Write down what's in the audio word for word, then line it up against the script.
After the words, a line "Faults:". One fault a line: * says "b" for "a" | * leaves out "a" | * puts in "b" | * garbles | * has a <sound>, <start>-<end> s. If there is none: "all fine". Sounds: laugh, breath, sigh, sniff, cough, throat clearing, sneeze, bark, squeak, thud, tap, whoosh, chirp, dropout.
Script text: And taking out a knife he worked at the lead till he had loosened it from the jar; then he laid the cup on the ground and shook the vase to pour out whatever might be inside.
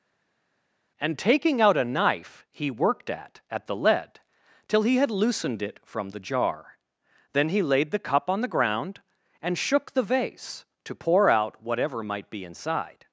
And taking out a knife he worked at at the lead till he had loosened it from the jar; then he laid the cup on the ground and shook the vase to pour out whatever might be inside.
Faults:
* puts in "at"